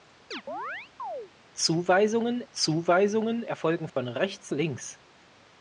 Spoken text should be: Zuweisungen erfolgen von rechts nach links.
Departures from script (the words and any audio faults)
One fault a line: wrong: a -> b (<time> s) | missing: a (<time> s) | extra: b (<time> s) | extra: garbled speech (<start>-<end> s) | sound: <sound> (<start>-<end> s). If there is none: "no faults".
sound: chirp (0.3-1.3 s)
extra: zuweisungen (2.5 s)
sound: dropout (3.9-4.0 s)
missing: nach (4.5 s)